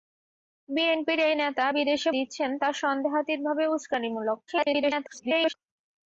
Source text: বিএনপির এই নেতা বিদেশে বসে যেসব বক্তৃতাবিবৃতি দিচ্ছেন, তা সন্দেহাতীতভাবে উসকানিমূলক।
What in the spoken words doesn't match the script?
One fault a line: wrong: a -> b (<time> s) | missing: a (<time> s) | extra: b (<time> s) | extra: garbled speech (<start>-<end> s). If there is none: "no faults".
missing: বসে যেসব বক্তৃতাবিবৃতি (2.1 s)
extra: garbled speech (4.5-5.5 s)